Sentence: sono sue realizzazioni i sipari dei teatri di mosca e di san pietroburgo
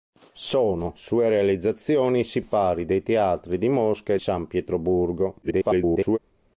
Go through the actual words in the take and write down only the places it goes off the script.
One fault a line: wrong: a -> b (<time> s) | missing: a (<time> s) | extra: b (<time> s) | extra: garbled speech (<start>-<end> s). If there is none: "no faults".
missing: di (4.2 s)
extra: garbled speech (5.4-6.2 s)